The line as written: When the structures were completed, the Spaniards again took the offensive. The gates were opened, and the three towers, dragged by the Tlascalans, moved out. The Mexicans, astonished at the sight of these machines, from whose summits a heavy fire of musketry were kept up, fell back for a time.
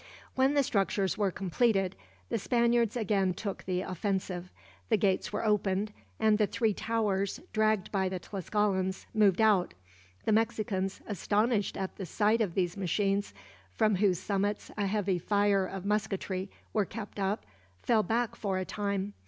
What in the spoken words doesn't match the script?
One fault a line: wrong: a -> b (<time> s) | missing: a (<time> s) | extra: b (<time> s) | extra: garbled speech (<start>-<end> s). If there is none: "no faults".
no faults